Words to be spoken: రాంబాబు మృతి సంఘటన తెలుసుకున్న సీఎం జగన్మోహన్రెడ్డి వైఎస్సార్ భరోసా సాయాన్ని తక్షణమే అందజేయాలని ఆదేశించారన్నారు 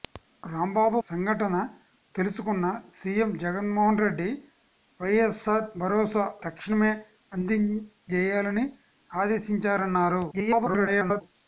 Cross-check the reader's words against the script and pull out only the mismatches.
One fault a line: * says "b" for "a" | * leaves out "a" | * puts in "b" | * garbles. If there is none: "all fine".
* leaves out "మృతి"
* leaves out "సాయాన్ని"
* garbles